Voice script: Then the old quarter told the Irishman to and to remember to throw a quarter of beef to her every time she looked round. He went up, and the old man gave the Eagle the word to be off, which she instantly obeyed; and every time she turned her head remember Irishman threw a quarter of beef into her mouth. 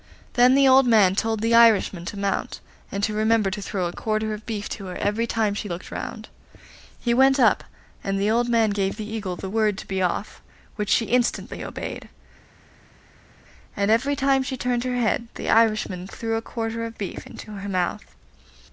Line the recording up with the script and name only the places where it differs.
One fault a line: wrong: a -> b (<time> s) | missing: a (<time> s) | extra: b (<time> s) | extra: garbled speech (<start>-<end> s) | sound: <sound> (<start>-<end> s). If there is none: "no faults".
wrong: quarter -> man (0.9 s)
extra: mount (2.2 s)
wrong: remember -> the (15.3 s)